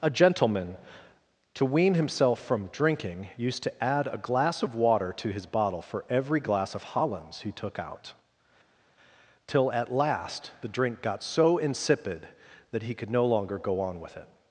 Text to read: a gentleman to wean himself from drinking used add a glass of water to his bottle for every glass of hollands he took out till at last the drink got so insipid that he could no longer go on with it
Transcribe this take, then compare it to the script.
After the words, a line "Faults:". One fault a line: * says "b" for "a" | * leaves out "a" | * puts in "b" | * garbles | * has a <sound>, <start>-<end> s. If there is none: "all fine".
a gentleman to wean himself from drinking used to add a glass of water to his bottle for every glass of hollands he took out till at last the drink got so insipid that he could no longer go on with it
Faults:
* puts in "to"